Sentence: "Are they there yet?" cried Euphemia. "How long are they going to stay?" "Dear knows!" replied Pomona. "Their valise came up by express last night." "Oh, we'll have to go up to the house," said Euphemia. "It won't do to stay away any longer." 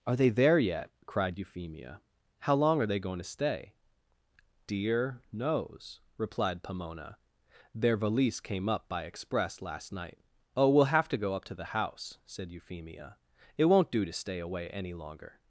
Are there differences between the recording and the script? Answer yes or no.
no